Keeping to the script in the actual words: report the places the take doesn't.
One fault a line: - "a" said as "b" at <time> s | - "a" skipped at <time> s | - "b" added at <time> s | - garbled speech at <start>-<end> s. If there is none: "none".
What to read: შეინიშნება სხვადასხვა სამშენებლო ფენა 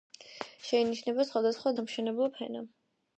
none